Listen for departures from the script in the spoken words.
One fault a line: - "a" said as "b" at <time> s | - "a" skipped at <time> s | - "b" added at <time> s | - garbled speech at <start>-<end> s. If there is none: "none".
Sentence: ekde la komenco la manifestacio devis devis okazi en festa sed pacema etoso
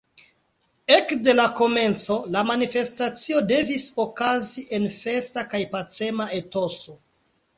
- "devis" skipped at 3.9 s
- "sed" said as "kaj" at 5.5 s